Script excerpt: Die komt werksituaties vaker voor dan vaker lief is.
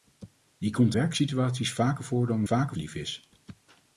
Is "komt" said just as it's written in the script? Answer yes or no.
yes